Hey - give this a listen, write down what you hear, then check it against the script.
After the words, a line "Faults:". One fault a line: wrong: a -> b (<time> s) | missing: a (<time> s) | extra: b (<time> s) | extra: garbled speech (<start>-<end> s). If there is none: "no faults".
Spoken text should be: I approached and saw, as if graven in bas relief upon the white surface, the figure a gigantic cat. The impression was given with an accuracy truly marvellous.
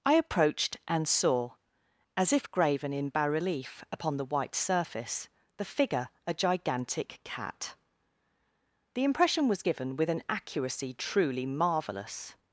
I approached and saw, as if graven in bas relief upon the white surface, the figure a gigantic cat. The impression was given with an accuracy truly marvellous.
Faults:
no faults